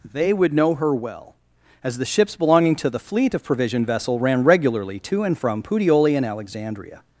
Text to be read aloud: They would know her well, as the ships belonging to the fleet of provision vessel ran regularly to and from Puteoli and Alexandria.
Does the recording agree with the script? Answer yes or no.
yes